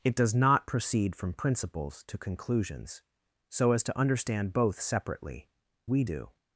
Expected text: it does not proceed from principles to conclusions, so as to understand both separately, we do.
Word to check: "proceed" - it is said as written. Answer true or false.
true